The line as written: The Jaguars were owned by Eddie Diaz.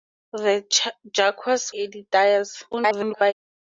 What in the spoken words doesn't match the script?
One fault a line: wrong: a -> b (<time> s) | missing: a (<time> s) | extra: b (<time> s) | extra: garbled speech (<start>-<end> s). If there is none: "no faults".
missing: were owned by (1.7 s)
extra: garbled speech (2.7-3.3 s)